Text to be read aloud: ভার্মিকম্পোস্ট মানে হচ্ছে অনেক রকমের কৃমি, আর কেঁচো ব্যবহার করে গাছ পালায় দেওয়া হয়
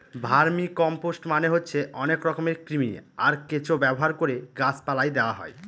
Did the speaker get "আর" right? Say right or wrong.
right